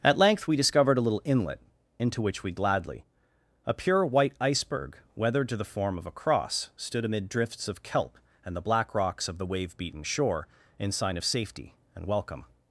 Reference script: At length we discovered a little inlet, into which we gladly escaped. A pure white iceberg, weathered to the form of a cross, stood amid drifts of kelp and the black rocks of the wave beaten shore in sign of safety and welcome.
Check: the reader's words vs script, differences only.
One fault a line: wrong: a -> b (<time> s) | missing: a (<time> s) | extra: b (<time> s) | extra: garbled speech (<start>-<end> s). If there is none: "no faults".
missing: escaped (3.0 s)